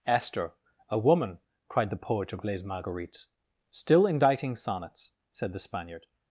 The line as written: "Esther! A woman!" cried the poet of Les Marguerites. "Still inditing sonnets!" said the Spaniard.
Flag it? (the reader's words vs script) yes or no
no